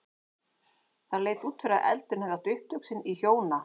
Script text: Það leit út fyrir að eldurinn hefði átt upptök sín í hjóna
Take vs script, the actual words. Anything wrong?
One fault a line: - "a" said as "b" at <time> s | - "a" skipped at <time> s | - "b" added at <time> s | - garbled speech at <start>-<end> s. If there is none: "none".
none